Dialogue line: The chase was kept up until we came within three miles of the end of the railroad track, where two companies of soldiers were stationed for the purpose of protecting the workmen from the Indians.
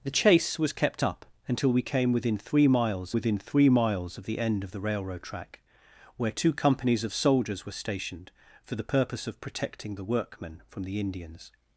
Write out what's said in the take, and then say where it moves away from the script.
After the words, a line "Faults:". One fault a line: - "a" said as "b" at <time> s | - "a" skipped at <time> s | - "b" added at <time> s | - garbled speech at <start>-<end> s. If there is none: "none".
The chase was kept up until we came within three miles within three miles of the end of the railroad track, where two companies of soldiers were stationed for the purpose of protecting the workmen from the Indians.
Faults:
- "within three miles" added at 3.1 s